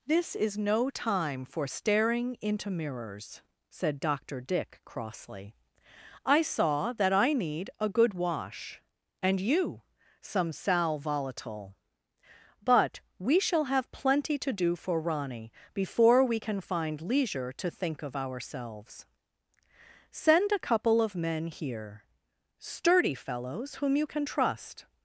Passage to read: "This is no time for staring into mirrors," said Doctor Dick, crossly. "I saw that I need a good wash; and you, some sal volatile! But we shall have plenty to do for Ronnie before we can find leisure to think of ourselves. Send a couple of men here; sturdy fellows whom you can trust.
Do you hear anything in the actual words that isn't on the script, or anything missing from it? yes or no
no